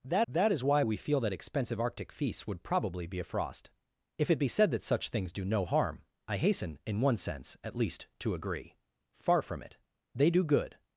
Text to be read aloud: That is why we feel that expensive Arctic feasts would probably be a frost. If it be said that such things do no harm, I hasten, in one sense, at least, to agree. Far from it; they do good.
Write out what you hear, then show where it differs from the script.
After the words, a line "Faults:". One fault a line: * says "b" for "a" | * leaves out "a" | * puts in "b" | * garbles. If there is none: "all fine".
That that is why we feel that expensive Arctic feasts would probably be a frost. If it be said that such things do no harm, I hasten, in one sense, at least, to agree. Far from it; they do good.
Faults:
* puts in "that"